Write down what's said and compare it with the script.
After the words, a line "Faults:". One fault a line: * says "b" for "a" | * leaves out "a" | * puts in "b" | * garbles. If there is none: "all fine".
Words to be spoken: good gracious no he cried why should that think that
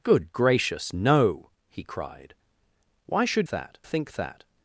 good gracious no he cried why should that think that
Faults:
all fine